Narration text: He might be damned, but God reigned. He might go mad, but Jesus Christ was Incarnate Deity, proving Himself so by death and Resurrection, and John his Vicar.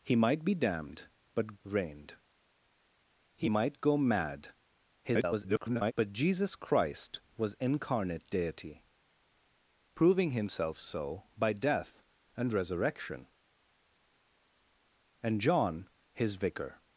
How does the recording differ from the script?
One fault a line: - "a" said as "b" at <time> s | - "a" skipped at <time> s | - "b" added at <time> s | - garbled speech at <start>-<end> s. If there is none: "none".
- "God" skipped at 1.6 s
- garbled speech at 5.0-5.9 s